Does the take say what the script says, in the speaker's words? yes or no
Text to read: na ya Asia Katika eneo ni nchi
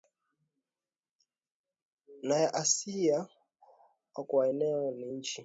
no